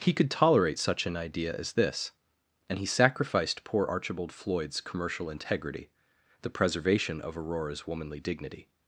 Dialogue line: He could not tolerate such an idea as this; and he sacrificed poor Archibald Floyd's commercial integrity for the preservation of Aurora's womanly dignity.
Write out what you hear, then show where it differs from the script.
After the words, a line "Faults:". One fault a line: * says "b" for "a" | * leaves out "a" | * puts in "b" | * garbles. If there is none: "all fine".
He could tolerate such an idea as this; and he sacrificed poor Archibald Floyd's commercial integrity the preservation of Aurora's womanly dignity.
Faults:
* leaves out "not"
* leaves out "for"